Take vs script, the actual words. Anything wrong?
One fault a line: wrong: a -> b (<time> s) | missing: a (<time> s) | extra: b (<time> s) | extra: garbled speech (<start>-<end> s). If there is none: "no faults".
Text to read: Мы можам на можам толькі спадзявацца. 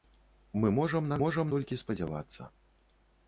no faults